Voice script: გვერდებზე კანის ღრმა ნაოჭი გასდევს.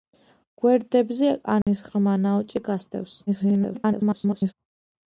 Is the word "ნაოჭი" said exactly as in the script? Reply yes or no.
yes